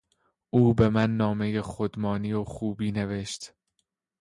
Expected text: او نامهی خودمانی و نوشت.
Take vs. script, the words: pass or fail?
fail